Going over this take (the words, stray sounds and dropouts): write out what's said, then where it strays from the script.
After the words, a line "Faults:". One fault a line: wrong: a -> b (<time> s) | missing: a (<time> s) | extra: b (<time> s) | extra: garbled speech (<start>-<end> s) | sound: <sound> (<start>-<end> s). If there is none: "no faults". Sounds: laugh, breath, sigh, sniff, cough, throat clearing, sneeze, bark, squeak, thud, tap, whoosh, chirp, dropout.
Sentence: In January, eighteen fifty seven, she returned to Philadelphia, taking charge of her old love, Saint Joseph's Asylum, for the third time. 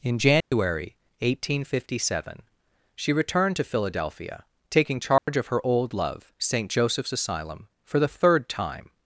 In January, eighteen fifty seven, she returned to Philadelphia, taking charge of her old love, Saint Joseph's Asylum, for the third time.
Faults:
sound: dropout (0.4-0.5 s)
sound: dropout (5.2-5.3 s)